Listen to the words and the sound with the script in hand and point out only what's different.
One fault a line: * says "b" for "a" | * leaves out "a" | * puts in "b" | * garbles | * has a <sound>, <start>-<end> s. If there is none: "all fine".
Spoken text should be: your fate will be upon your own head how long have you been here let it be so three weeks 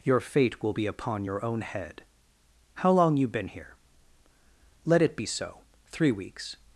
* leaves out "have"